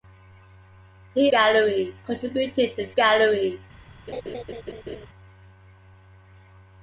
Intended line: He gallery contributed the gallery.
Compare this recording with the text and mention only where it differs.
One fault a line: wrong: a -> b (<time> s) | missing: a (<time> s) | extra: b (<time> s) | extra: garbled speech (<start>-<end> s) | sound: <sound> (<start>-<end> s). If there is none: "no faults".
sound: laugh (4.1-5.1 s)